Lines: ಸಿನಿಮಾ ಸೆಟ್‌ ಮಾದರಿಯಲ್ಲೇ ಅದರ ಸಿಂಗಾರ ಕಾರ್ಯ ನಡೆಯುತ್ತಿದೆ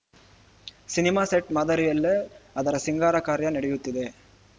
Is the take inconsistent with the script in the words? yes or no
no